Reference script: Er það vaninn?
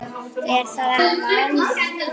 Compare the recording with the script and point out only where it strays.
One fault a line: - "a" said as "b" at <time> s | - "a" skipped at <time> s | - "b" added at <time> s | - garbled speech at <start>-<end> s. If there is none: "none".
none